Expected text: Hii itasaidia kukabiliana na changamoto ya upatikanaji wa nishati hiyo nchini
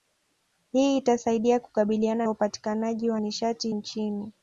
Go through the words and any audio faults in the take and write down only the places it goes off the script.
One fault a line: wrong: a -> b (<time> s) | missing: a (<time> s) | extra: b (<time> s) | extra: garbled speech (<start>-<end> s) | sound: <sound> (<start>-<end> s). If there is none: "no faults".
missing: na changamoto (2.3 s)
missing: hiyo (3.7 s)